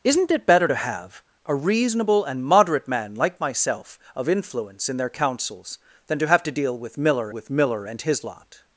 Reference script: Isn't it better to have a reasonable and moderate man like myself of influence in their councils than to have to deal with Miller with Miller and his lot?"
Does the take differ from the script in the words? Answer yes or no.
no